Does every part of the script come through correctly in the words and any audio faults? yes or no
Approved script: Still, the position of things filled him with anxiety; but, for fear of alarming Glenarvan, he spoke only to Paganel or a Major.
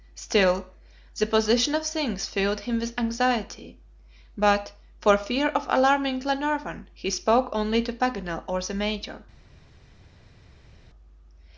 no